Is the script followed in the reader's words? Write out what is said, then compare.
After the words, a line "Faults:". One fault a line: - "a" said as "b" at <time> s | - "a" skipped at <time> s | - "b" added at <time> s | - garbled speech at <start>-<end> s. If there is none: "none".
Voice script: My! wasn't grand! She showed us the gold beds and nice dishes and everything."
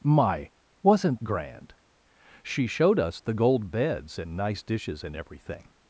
My! wasn't grand! She showed us the gold beds and nice dishes and everything."
Faults:
none